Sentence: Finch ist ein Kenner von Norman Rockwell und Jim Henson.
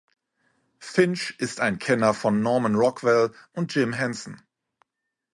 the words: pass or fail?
pass